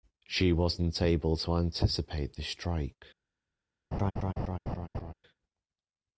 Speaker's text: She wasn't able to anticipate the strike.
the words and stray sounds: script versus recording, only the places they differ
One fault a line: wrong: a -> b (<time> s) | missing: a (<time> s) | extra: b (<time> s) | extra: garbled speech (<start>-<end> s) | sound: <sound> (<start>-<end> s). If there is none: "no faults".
sound: laugh (3.9-5.1 s)